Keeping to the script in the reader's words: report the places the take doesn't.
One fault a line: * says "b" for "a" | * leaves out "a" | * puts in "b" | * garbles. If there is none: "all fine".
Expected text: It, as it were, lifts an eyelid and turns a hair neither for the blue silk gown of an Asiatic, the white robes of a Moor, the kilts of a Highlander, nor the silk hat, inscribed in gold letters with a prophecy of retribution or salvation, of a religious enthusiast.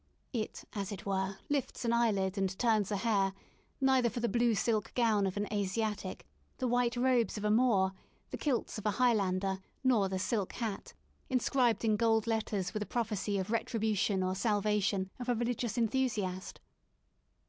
all fine